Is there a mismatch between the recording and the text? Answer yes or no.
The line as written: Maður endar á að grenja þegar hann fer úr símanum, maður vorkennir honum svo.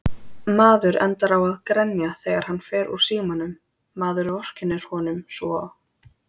no